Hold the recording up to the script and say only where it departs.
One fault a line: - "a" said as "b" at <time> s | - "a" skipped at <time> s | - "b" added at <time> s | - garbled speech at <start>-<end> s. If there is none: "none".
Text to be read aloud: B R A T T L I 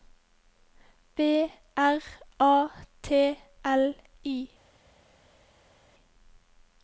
- "T" skipped at 3.4 s